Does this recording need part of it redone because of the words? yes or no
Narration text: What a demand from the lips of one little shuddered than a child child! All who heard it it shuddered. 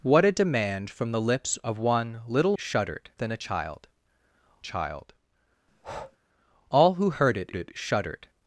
no